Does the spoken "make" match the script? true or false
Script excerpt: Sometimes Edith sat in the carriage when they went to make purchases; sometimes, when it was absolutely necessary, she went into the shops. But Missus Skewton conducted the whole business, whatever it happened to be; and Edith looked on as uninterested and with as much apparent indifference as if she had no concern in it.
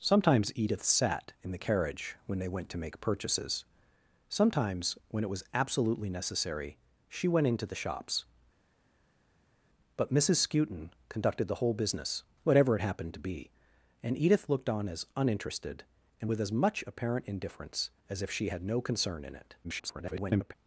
true